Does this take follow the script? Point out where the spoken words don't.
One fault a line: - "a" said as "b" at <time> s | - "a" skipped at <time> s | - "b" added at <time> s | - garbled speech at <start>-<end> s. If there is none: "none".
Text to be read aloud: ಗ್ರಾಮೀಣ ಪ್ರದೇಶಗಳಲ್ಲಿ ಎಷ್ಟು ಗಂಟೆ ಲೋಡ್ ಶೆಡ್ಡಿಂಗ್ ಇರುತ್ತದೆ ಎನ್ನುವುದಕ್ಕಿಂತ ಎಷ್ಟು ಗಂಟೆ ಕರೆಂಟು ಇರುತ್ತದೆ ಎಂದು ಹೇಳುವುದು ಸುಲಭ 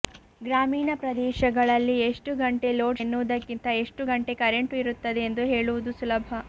- "ಶೆಡ್ಡಿಂಗ್ ಇರುತ್ತದೆ" skipped at 3.0 s